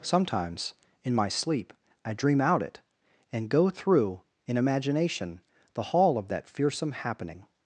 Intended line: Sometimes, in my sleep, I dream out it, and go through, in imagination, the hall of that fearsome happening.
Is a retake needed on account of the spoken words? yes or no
no